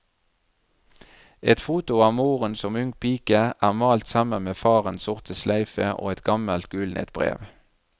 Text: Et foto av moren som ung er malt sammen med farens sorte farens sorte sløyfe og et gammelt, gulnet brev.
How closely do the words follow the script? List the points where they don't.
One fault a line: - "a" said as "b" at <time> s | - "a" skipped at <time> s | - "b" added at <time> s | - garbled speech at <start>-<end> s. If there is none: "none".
- "pike" added at 3.0 s
- "farens sorte" skipped at 5.4 s